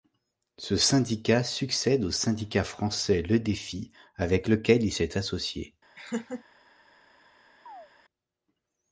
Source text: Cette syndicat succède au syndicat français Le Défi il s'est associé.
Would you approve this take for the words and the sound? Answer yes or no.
no